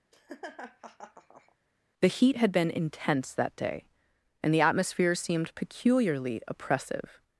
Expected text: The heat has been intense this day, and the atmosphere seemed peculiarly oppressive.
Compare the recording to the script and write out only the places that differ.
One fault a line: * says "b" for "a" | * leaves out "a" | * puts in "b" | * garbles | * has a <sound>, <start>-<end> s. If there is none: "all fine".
* has a laugh, 0.1-1.6 s
* says "had" for "has"
* says "that" for "this"